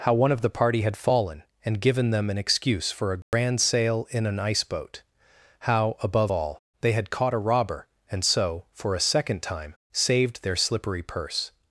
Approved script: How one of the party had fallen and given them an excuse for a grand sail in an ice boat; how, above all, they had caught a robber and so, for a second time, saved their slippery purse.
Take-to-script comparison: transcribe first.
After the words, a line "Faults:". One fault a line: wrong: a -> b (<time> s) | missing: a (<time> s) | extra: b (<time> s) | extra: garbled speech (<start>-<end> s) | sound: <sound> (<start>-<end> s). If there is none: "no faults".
How one of the party had fallen and given them an excuse for a grand sail in an ice boat; how, above all, they had caught a robber and so, for a second time, saved their slippery purse.
Faults:
sound: dropout (3.2-3.3 s)